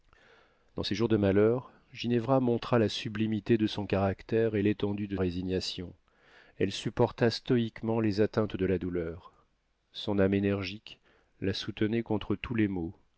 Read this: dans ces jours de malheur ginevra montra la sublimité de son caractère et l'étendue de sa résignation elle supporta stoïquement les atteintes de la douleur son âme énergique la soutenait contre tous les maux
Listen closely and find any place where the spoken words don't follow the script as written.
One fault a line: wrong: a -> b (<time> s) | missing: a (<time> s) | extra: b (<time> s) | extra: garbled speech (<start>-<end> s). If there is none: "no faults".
missing: sa (5.2 s)